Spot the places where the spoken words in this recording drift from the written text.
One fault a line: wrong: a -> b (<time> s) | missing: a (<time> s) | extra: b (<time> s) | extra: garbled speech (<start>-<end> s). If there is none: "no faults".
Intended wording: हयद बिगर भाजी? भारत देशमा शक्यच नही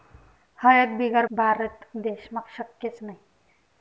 missing: भाजी (1.2 s)